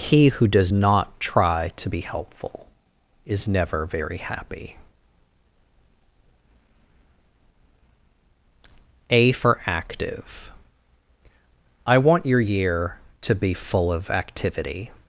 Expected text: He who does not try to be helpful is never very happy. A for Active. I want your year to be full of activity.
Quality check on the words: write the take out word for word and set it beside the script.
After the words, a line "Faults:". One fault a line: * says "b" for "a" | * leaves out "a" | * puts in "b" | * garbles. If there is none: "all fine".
He who does not try to be helpful is never very happy. A for Active. I want your year to be full of activity.
Faults:
all fine